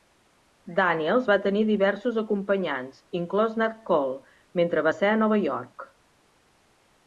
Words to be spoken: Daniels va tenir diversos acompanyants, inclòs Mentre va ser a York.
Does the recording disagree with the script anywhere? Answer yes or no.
yes